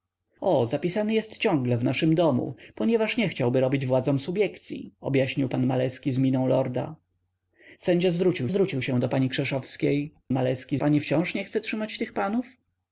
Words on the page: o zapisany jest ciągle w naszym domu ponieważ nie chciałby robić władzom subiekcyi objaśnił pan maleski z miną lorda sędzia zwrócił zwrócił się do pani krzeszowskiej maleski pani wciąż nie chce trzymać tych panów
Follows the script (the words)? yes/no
yes